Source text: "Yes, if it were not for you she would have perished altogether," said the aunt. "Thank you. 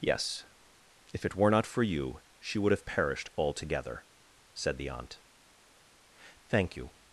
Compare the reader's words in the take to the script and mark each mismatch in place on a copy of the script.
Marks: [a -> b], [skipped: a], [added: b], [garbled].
"Yes, if it were not for you she would have perished altogether," said the aunt. "Thank you.